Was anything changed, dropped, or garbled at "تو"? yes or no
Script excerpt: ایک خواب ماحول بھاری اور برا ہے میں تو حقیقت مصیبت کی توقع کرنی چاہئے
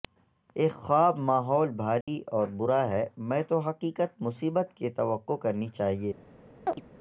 no